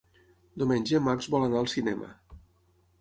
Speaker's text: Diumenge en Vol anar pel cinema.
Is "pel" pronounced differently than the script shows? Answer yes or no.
yes